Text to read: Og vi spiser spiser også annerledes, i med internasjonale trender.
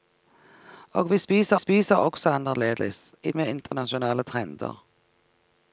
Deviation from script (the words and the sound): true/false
true